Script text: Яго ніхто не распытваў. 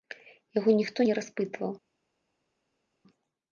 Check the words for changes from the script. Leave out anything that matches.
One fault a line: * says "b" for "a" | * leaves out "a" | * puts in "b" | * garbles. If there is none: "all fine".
all fine